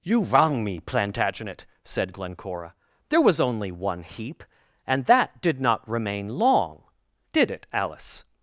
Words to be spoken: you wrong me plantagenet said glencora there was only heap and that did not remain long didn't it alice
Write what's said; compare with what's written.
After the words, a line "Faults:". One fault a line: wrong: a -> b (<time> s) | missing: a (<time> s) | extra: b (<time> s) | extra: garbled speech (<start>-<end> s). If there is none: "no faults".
you wrong me plantagenet said glencora there was only one heap and that did not remain long did it alice
Faults:
extra: one (3.7 s)
wrong: didn't -> did (7.3 s)